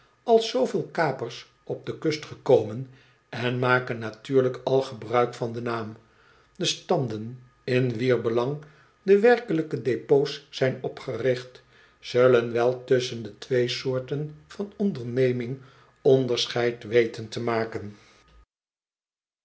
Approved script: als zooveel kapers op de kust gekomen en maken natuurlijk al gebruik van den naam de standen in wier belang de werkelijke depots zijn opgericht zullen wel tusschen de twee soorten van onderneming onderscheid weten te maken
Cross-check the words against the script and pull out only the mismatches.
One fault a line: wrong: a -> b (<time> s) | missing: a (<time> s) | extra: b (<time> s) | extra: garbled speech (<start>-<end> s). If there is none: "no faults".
no faults